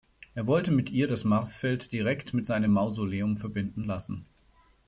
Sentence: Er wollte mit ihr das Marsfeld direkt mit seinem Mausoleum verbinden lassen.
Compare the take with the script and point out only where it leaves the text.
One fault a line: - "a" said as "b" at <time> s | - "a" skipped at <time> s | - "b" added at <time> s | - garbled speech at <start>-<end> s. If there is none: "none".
none